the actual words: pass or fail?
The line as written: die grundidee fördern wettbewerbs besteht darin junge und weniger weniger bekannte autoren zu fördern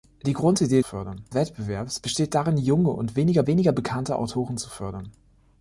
pass